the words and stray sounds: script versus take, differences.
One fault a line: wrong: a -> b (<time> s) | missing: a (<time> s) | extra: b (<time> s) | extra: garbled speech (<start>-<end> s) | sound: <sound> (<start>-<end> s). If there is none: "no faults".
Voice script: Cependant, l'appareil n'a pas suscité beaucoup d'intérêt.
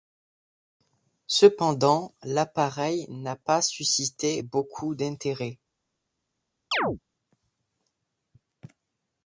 sound: chirp (6.7-7.0 s)